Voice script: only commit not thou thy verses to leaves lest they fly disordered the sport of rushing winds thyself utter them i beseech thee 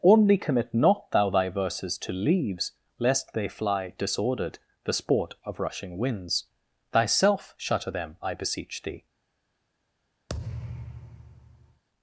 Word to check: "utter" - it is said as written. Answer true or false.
false